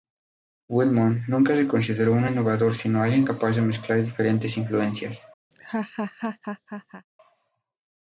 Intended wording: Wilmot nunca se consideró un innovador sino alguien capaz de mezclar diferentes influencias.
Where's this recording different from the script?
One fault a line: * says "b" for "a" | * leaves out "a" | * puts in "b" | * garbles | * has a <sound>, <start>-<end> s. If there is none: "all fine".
* has a laugh, 5.5-7.1 s